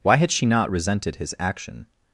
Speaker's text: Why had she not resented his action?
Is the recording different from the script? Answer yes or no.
no